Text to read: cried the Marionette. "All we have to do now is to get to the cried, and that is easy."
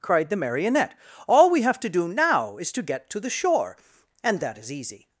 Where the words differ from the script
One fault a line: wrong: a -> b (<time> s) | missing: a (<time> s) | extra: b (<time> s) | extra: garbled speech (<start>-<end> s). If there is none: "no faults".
wrong: cried -> shore (3.3 s)